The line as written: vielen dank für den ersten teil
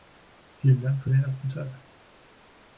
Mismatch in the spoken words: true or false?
false